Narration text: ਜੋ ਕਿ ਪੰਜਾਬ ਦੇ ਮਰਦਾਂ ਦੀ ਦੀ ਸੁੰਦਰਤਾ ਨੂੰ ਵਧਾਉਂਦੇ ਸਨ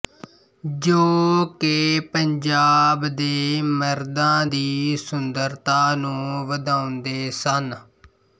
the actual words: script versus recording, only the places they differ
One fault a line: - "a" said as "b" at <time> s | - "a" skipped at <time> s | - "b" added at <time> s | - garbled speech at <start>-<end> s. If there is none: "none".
- "ਦੀ" skipped at 5.0 s